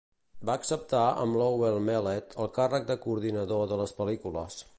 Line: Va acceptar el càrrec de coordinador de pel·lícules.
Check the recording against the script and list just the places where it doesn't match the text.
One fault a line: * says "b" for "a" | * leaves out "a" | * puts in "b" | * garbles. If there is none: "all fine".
* puts in "amb Lowell Mellett"
* puts in "les"